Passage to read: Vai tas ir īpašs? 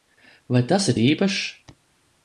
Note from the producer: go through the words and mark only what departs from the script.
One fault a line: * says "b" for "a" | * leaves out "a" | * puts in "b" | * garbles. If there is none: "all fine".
all fine